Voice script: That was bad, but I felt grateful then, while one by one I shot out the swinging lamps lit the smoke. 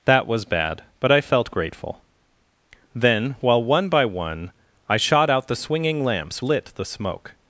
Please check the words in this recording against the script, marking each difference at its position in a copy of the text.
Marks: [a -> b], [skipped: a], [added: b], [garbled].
That was bad, but I felt grateful then, while one by one I shot out the swinging lamps lit the smoke.